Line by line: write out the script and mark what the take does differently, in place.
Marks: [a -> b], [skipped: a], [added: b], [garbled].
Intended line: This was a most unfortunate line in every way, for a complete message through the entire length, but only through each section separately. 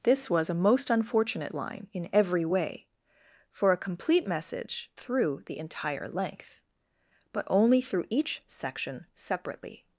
This was a most unfortunate line in every way, for a complete message through the entire length, but only through each section separately.